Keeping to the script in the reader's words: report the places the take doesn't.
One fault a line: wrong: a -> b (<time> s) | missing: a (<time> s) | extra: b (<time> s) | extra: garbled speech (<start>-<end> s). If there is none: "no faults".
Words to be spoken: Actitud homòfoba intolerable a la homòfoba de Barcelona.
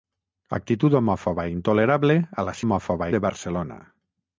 no faults